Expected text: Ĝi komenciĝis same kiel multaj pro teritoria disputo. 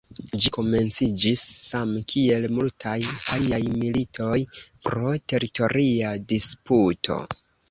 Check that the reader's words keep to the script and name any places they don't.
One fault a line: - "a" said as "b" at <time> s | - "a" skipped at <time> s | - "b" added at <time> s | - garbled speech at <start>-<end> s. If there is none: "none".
- "aliaj militoj" added at 3.4 s